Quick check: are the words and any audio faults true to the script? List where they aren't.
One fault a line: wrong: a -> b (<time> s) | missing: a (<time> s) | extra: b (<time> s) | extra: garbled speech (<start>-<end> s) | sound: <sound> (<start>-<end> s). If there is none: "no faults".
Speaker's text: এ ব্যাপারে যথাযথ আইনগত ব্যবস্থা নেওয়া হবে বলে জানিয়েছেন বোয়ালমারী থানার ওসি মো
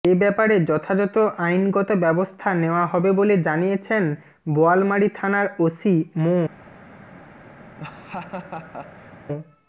sound: laugh (7.8-9.1 s)